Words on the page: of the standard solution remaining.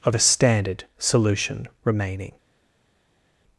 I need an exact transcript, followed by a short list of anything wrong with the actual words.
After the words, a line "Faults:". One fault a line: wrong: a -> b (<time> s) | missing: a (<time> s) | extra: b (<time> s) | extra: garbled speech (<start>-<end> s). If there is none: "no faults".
of a standard solution remaining.
Faults:
wrong: the -> a (0.1 s)